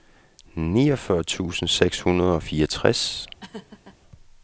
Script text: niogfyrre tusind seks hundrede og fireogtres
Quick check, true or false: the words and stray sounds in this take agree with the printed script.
false